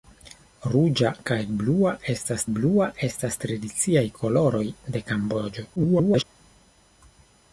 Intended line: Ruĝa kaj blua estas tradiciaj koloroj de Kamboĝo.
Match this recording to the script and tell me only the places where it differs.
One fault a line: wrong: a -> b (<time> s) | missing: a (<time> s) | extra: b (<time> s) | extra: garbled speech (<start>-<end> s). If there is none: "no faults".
extra: blua estas (2.6 s)
extra: garbled speech (5.8-6.2 s)